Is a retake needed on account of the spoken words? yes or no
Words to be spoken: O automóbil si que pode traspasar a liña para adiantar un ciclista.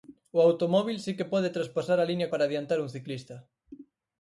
no